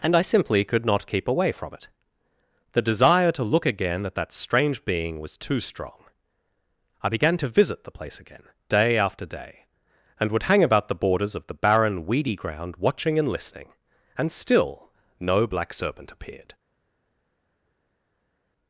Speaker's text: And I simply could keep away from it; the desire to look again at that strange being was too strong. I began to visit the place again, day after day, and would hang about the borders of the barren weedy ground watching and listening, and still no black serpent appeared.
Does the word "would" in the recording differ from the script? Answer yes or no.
no